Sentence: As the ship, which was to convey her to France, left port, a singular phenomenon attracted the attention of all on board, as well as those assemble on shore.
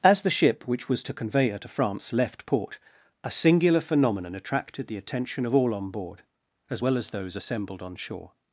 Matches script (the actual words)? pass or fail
fail